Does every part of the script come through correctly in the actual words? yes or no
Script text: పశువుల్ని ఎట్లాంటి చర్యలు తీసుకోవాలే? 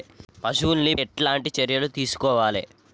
yes